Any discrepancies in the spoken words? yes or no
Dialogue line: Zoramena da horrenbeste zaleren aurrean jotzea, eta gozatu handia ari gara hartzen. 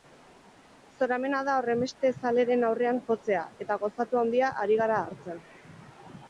no